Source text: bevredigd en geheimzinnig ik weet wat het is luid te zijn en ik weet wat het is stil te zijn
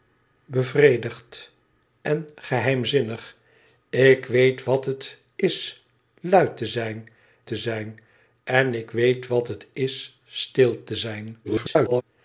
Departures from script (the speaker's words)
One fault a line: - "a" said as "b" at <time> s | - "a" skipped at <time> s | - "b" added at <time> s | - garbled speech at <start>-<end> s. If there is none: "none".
- "te zijn" added at 7.5 s
- garbled speech at 11.4-12.0 s